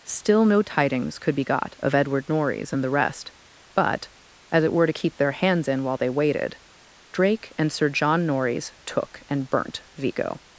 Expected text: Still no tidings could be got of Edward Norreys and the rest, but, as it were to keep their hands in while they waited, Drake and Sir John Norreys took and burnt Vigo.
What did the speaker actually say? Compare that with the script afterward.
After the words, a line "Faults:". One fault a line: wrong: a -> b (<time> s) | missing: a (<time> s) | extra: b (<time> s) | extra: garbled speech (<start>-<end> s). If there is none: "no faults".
Still no tidings could be got of Edward Norreys and the rest, but, as it were to keep their hands in while they waited, Drake and Sir John Norreys took and burnt Vigo.
Faults:
no faults